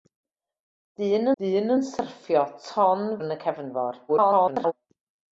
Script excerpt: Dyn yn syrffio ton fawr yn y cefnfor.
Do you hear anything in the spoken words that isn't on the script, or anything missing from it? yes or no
yes